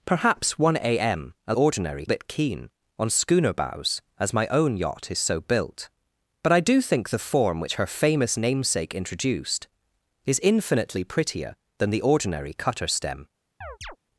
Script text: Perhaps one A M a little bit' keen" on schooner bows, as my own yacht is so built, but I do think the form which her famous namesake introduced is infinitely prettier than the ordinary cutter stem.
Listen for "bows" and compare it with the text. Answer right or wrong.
right